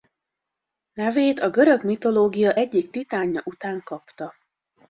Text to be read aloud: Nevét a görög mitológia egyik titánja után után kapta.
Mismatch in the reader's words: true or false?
true